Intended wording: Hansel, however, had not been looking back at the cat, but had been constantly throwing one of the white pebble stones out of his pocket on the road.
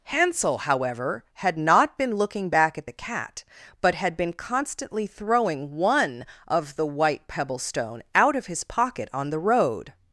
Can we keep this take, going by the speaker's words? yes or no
no